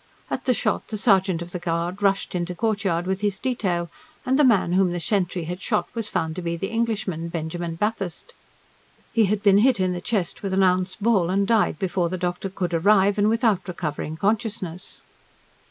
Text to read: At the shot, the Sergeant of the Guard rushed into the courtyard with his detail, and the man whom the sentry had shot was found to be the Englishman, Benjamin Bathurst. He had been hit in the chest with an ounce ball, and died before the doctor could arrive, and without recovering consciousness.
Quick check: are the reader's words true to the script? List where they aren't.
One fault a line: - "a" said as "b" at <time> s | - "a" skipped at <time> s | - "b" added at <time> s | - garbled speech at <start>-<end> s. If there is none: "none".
- "the" skipped at 2.5 s